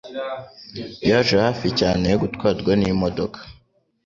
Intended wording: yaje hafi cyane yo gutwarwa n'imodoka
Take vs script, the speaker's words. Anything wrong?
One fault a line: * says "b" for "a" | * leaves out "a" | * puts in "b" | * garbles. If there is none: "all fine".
all fine